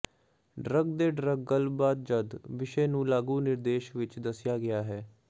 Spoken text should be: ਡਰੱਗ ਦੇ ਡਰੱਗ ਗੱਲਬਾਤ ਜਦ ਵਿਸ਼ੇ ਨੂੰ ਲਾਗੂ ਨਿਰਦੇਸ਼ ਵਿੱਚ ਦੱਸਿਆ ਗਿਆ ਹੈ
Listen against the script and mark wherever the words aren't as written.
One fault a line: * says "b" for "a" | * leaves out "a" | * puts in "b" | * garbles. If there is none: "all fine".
all fine